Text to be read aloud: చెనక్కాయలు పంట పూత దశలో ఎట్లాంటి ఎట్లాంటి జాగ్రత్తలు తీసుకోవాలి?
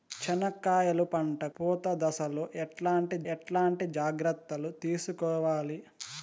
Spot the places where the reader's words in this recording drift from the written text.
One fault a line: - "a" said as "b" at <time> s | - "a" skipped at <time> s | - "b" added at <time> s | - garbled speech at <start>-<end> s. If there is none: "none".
none